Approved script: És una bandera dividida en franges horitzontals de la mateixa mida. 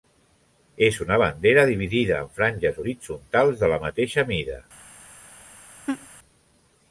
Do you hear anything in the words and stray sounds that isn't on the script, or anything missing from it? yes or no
yes